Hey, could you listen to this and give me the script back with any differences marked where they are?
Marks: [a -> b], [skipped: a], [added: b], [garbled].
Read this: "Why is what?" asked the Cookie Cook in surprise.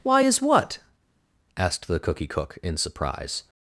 "Why is what?" asked the Cookie Cook in surprise.